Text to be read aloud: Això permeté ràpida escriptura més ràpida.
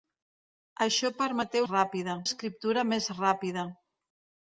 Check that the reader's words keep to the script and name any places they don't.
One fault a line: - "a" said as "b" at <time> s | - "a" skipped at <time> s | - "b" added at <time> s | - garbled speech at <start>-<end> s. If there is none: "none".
none